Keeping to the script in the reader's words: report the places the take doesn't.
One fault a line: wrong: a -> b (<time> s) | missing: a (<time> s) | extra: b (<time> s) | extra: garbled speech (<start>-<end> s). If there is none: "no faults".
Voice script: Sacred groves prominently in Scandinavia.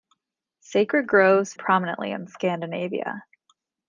no faults